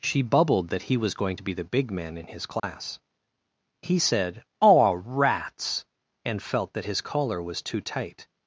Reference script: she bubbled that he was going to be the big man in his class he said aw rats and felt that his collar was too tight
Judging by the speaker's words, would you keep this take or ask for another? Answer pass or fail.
pass